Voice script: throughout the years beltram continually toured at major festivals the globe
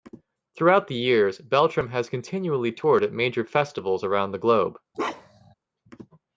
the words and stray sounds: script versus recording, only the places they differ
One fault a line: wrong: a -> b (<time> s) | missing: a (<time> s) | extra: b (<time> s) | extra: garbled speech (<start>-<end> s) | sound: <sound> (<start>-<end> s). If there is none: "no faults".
extra: has (1.9 s)
extra: around (4.0 s)
sound: bark (4.9-5.5 s)